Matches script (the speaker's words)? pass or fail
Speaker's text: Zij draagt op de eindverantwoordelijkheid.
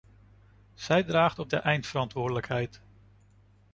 pass